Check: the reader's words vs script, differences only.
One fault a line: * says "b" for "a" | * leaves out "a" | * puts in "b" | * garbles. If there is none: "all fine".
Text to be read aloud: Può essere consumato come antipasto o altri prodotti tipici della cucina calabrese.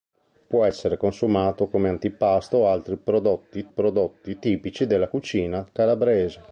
* puts in "prodotti"